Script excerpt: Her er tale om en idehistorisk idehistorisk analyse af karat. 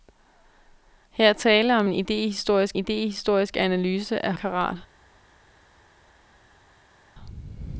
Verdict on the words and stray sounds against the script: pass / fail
pass